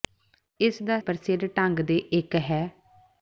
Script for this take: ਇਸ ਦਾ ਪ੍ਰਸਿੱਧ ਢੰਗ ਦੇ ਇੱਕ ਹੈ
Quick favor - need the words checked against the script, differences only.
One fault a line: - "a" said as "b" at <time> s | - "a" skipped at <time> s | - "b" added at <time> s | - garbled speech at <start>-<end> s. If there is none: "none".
none